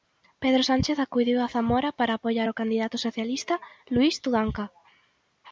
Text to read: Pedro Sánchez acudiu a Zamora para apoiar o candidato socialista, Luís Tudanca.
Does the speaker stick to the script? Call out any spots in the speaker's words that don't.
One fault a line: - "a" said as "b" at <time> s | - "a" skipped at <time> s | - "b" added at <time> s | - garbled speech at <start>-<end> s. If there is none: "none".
none